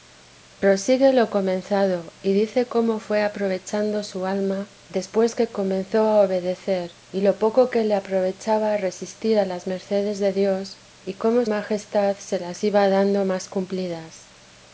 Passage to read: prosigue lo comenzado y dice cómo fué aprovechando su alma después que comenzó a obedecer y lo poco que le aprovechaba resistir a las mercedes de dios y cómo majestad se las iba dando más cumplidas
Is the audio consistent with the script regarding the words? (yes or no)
yes